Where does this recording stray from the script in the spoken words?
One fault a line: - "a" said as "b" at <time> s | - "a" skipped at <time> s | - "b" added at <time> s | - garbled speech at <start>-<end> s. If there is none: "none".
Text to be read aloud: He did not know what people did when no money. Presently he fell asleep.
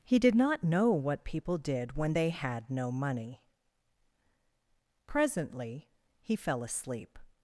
- "they had" added at 2.1 s